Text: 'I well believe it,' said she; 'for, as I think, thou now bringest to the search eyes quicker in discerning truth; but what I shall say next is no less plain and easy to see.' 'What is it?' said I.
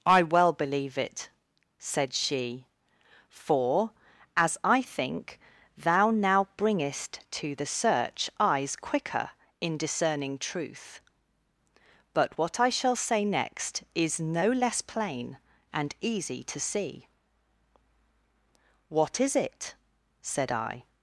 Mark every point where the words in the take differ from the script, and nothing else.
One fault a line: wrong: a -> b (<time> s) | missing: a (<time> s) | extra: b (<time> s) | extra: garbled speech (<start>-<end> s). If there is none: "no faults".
no faults